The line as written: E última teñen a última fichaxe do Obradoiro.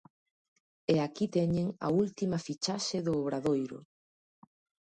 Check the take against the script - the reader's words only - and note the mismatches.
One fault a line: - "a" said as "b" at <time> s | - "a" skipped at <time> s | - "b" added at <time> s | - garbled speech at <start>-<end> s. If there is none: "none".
- "última" said as "aquí" at 1.1 s